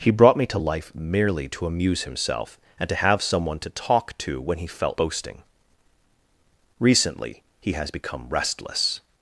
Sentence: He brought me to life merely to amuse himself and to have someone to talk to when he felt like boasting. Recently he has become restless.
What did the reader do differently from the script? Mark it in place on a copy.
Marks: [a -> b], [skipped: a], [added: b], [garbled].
He brought me to life merely to amuse himself and to have someone to talk to when he felt [skipped: like] boasting. Recently he has become restless.